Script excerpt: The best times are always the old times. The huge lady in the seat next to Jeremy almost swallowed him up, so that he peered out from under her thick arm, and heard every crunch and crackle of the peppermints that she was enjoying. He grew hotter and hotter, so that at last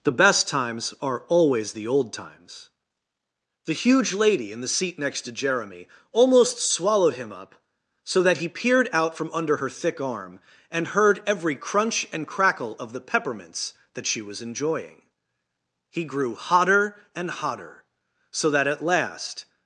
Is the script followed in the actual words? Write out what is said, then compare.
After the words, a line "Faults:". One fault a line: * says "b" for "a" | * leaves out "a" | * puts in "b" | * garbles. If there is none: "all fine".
The best times are always the old times. The huge lady in the seat next to Jeremy almost swallowed him up, so that he peered out from under her thick arm, and heard every crunch and crackle of the peppermints that she was enjoying. He grew hotter and hotter, so that at last
Faults:
all fine